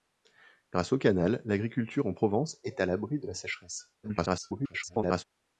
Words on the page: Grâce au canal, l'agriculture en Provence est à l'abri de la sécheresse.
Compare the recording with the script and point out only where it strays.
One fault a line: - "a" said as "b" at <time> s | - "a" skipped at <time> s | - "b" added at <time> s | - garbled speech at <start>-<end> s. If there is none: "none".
- garbled speech at 4.0-5.2 s